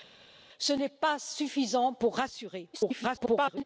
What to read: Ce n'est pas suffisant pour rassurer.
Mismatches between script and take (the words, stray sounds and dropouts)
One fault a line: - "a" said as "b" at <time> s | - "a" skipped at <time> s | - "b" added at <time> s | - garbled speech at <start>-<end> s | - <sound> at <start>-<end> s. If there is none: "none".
- garbled speech at 2.7-3.6 s